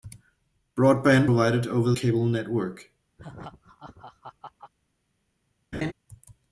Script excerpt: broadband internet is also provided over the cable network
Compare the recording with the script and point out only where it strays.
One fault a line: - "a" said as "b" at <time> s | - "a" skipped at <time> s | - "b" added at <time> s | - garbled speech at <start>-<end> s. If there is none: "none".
- "internet is also" skipped at 1.3 s
- "the" skipped at 1.9 s